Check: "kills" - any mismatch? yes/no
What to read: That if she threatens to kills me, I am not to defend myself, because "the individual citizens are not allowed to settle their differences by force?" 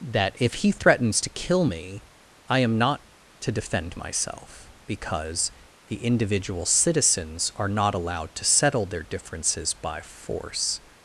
yes